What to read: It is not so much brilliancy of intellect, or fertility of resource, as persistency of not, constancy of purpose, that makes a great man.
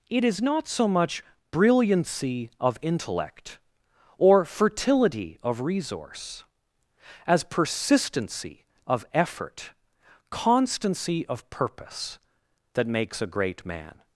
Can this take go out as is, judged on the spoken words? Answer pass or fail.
fail